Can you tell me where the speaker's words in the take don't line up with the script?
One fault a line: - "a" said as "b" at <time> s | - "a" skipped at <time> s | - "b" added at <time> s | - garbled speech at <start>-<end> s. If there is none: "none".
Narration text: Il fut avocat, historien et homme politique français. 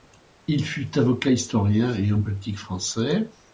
none